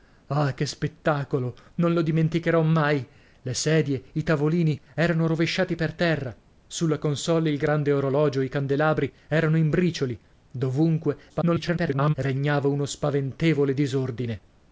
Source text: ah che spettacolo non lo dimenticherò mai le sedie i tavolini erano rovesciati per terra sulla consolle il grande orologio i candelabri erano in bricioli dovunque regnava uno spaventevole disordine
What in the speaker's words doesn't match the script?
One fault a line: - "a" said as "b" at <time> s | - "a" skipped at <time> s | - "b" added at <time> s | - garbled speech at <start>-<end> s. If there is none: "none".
- garbled speech at 11.3-12.1 s